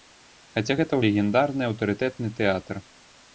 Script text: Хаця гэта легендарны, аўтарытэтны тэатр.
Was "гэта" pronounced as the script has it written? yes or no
yes